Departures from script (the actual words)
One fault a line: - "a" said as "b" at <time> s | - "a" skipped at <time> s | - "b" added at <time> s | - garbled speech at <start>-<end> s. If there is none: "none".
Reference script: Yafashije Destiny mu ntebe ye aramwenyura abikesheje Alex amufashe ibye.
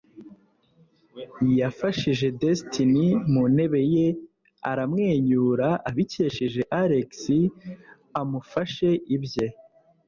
none